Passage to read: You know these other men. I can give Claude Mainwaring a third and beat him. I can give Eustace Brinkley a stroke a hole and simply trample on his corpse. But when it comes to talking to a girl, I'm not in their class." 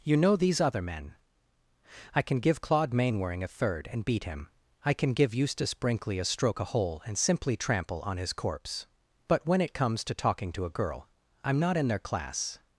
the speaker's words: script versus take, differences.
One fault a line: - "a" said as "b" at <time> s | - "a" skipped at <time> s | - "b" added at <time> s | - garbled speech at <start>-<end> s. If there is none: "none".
none